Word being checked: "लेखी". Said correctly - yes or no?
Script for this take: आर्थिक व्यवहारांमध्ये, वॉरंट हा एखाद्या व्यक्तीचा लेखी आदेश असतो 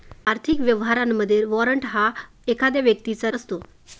no